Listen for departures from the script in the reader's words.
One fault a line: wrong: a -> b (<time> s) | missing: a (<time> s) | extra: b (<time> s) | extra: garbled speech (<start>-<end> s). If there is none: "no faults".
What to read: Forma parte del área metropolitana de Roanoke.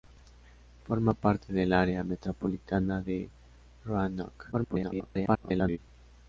extra: garbled speech (4.5-5.8 s)